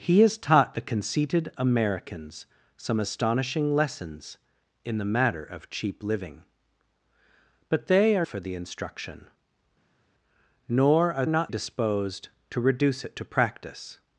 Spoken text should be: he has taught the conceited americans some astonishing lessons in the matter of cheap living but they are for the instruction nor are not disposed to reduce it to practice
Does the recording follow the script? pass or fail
pass